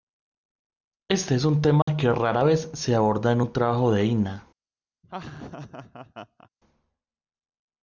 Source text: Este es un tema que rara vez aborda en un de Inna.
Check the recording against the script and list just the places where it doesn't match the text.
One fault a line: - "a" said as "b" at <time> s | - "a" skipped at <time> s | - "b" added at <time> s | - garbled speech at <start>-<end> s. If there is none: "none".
- "se" added at 2.7 s
- "trabajo" added at 3.5 s